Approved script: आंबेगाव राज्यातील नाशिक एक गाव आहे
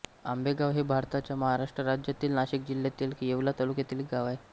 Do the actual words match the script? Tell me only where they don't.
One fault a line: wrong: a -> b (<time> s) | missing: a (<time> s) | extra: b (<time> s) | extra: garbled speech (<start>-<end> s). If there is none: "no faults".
extra: हे भारताच्या महाराष्ट्र (0.7 s)
extra: जिल्ह्यातील येवला तालुक्यातील (2.7 s)